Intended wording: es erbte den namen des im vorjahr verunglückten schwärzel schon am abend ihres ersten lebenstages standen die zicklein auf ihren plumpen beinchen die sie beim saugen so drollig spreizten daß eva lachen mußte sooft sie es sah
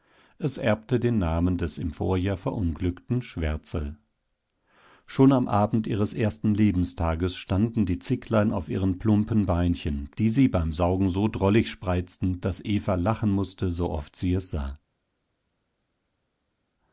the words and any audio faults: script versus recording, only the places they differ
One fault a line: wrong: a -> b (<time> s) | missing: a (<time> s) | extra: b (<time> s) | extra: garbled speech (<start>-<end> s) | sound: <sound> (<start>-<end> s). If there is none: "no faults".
no faults